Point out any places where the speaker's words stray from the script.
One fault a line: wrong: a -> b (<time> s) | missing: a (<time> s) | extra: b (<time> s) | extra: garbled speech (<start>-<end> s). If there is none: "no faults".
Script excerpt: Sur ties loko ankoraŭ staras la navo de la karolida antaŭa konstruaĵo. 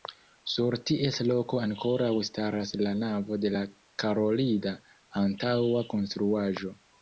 no faults